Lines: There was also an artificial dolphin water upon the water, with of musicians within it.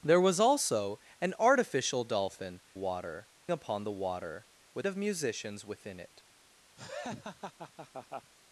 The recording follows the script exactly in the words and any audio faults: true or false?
false